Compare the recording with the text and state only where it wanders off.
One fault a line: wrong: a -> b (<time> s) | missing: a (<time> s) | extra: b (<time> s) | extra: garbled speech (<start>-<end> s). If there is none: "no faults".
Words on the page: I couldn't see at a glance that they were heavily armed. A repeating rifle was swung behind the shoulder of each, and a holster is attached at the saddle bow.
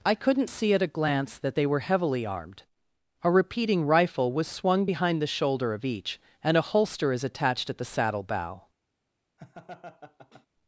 no faults